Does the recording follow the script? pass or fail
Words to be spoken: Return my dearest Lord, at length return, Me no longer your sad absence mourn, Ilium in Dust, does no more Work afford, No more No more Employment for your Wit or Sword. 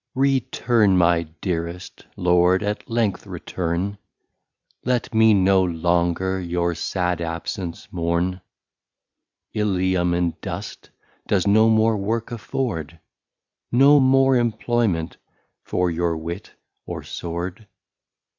fail